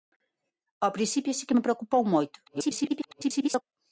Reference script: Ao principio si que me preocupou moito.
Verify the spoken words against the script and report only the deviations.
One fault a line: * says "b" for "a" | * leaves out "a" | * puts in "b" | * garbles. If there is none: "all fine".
* garbles